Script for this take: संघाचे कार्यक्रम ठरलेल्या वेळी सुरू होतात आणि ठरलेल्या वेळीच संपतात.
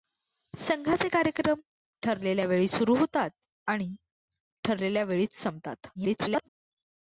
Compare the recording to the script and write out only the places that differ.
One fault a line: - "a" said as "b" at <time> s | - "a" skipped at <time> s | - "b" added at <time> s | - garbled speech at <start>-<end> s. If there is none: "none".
- garbled speech at 5.9-6.5 s